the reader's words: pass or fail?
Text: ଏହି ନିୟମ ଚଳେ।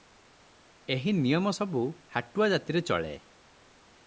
fail